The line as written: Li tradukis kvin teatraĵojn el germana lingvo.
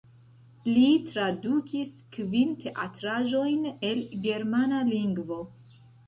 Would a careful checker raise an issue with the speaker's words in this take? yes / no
no